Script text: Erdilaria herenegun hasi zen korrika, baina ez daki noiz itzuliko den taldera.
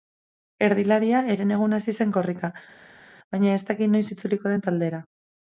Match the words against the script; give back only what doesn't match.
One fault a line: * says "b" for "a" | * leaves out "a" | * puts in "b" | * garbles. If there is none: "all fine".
all fine